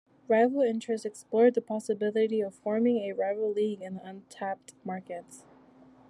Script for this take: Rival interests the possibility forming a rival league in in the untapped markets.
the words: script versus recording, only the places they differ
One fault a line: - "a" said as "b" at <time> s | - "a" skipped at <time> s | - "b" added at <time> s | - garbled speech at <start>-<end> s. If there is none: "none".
- "explored" added at 1.1 s
- "of" added at 2.4 s
- "in" skipped at 4.0 s